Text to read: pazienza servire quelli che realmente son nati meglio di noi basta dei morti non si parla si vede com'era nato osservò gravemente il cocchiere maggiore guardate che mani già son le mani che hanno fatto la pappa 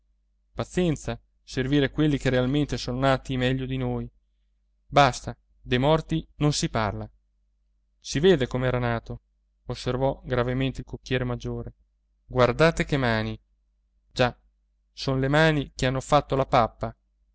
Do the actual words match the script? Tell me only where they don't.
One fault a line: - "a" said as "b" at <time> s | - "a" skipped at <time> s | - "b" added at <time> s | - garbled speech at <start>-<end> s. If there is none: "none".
none